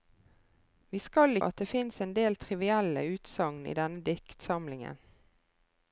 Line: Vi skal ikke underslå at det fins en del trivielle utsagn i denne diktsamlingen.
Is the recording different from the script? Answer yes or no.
yes